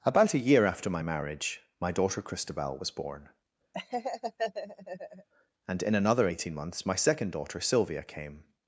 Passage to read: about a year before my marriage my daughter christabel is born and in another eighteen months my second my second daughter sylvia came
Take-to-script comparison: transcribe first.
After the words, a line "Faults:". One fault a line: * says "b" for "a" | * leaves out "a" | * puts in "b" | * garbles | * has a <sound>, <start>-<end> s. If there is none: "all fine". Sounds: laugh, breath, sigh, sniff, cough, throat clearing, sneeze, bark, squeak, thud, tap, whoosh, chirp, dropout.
about a year after my marriage my daughter christabel was born and in another eighteen months my second daughter sylvia came
Faults:
* says "after" for "before"
* says "was" for "is"
* has a laugh, 3.7-5.3 s
* leaves out "my second"